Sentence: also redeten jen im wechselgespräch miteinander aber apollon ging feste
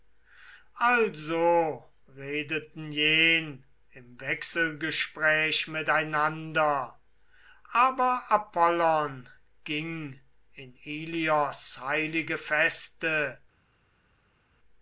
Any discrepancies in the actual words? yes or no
yes